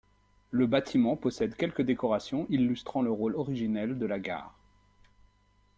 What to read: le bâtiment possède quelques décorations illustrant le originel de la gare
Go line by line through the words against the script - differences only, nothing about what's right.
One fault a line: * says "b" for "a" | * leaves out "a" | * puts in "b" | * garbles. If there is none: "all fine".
* puts in "rôle"